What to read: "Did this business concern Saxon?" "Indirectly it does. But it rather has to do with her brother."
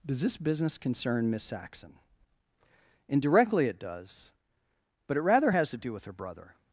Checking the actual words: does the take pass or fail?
fail